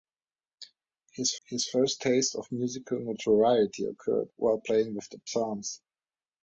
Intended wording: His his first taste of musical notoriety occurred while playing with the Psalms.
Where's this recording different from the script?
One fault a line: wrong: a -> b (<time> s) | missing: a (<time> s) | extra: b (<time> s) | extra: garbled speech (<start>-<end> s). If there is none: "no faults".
no faults